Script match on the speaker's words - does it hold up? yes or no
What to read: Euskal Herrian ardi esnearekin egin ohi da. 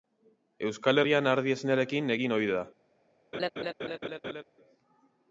yes